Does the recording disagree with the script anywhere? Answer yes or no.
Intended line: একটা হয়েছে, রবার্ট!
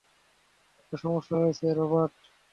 yes